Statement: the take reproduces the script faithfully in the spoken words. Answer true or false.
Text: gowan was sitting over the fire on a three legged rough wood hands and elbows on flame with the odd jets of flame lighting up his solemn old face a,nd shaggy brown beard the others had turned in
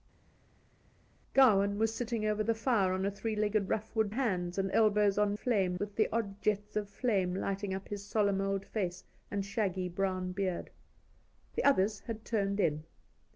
true